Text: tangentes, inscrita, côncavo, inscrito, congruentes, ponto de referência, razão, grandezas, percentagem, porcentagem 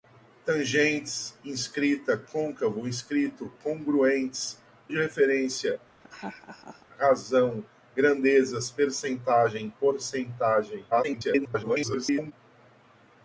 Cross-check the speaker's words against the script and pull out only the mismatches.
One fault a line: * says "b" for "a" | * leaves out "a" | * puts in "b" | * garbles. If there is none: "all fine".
* leaves out "ponto"
* garbles